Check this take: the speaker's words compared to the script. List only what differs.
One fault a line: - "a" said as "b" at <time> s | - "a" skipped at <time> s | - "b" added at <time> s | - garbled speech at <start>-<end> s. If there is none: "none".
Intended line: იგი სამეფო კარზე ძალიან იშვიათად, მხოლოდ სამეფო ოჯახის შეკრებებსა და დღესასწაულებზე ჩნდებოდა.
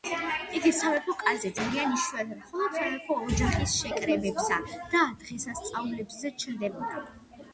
none